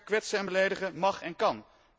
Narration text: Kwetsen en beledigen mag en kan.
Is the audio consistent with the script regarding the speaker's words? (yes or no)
yes